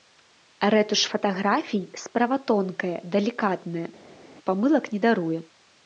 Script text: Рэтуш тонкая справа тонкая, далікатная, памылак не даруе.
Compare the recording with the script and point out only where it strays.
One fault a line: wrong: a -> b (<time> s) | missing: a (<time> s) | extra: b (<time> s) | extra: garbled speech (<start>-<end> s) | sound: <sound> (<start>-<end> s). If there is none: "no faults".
wrong: тонкая -> фатаграфій (1.1 s)